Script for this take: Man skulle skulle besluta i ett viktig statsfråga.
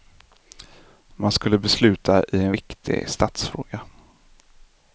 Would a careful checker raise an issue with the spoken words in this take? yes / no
yes